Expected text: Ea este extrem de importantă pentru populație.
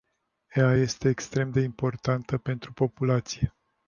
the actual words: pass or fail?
pass